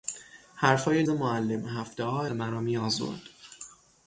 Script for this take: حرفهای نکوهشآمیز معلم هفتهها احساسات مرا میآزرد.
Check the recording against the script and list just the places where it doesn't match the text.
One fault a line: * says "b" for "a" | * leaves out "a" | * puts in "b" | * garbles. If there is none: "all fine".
* leaves out "نکوهشآمیز"
* leaves out "احساسات"